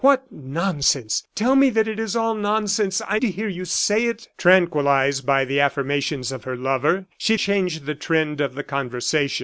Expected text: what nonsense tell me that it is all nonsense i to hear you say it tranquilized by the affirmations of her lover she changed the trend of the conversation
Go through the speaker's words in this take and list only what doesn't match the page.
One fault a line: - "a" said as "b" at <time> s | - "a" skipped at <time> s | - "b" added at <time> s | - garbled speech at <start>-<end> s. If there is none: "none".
none